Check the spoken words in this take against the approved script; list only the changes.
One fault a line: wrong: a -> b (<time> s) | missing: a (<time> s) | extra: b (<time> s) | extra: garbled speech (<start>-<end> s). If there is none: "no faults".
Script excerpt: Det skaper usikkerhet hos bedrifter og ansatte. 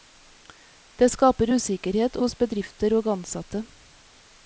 no faults